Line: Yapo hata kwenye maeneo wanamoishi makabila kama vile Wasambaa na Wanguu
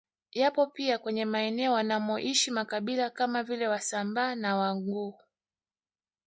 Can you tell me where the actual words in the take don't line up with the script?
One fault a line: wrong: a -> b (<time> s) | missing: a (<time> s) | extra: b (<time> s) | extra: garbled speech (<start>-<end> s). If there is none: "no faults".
wrong: hata -> pia (0.6 s)